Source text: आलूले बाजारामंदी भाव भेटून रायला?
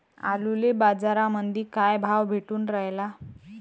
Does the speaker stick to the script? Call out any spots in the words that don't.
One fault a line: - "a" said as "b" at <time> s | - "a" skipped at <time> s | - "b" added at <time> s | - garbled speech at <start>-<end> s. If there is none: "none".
- "काय" added at 1.7 s